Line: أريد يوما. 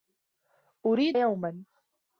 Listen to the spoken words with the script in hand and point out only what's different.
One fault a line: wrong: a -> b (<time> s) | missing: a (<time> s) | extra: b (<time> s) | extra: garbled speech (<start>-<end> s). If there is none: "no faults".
no faults